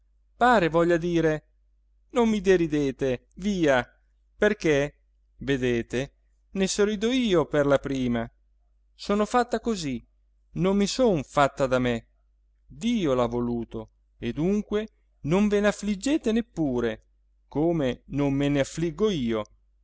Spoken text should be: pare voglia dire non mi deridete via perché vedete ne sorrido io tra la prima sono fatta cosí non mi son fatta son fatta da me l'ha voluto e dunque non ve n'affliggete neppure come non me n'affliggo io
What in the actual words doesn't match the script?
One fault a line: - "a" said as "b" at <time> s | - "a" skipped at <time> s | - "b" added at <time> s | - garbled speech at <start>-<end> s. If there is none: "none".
- "tra" said as "per" at 7.5 s
- "son fatta" skipped at 11.7 s
- "dio" added at 12.7 s